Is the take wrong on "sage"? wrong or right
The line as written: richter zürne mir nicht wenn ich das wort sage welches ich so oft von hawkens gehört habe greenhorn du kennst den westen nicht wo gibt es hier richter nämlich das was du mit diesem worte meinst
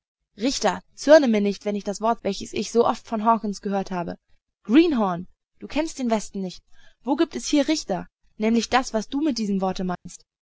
wrong